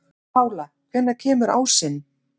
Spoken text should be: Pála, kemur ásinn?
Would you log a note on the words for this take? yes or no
yes